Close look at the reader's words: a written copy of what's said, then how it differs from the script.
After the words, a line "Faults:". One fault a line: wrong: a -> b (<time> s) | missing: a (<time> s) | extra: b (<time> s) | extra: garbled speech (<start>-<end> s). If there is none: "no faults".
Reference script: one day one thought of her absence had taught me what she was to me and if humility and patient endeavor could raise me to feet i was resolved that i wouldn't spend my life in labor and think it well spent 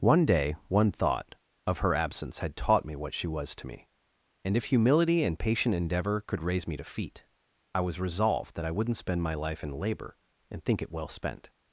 one day one thought of her absence had taught me what she was to me and if humility and patient endeavor could raise me to feet i was resolved that i wouldn't spend my life in labor and think it well spent
Faults:
no faults